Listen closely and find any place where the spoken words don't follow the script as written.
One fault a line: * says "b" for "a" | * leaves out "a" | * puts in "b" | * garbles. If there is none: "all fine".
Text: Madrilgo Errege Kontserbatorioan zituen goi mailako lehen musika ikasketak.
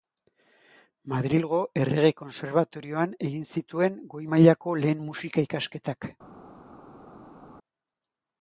* puts in "egin"